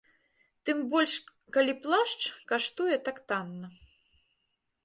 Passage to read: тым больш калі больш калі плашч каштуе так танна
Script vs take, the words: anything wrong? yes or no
yes